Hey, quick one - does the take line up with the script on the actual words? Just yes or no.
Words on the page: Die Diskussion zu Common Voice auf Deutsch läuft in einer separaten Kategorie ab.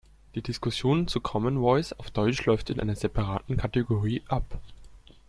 yes